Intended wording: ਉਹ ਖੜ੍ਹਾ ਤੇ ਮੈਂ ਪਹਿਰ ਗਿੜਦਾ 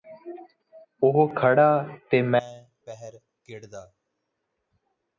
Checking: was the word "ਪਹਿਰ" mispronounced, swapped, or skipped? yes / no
no